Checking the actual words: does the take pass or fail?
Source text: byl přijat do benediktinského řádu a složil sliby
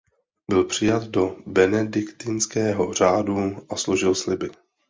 pass